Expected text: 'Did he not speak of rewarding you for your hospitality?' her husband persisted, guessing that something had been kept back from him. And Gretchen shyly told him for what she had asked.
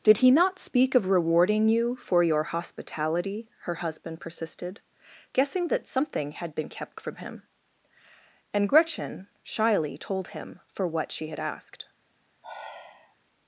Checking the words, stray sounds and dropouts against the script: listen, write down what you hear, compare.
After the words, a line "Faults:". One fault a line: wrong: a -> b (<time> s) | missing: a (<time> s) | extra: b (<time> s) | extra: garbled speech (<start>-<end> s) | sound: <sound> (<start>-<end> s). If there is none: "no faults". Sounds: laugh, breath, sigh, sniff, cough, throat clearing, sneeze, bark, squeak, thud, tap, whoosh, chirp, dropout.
'Did he not speak of rewarding you for your hospitality?' her husband persisted, guessing that something had been kept from him. And Gretchen shyly told him for what she had asked.
Faults:
missing: back (7.0 s)
sound: sigh (12.4-13.2 s)